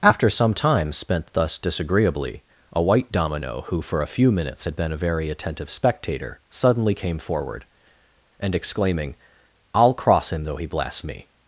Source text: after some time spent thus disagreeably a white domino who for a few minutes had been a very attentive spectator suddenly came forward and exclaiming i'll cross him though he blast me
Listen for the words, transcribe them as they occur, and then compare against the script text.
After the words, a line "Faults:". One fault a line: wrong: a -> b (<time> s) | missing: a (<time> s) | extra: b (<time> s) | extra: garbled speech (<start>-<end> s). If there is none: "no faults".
after some time spent thus disagreeably a white domino who for a few minutes had been a very attentive spectator suddenly came forward and exclaiming i'll cross him though he blast me
Faults:
no faults